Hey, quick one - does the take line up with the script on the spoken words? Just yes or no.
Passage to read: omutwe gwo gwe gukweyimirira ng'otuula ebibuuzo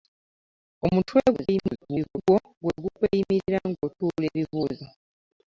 no